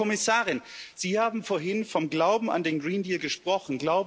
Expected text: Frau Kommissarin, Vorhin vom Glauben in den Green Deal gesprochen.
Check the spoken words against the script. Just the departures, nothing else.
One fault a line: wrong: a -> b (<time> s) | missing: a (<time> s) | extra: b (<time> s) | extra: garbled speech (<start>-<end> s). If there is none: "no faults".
extra: Sie haben (0.9 s)
wrong: in -> an (2.5 s)